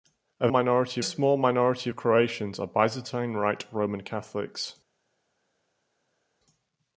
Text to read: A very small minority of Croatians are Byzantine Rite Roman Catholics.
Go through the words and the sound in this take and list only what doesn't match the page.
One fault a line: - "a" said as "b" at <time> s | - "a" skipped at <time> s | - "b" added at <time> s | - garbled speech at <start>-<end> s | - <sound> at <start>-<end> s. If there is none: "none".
- "very" said as "minority" at 0.5 s